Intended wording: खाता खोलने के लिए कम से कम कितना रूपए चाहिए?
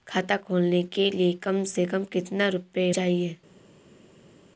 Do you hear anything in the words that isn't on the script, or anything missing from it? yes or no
no